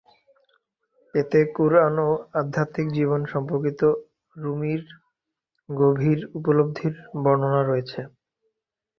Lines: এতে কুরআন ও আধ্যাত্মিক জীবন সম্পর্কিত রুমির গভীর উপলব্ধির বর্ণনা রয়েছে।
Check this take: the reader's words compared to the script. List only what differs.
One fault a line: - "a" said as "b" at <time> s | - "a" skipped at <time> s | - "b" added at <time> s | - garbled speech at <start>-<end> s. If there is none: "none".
none